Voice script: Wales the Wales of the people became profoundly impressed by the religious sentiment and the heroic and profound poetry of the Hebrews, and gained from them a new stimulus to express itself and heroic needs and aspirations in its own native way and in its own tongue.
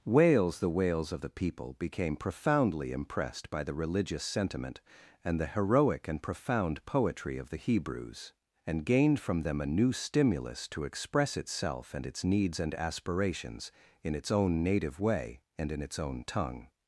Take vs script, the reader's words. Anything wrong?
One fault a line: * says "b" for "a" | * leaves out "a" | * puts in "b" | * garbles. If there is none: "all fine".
* says "its" for "heroic"